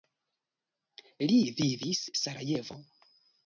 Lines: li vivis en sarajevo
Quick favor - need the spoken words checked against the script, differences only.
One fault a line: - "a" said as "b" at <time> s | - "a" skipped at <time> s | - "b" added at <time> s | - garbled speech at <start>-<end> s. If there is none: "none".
- "en" skipped at 2.0 s